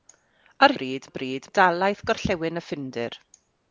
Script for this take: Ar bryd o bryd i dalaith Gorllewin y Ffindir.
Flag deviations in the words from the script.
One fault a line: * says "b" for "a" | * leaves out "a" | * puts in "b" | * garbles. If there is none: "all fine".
all fine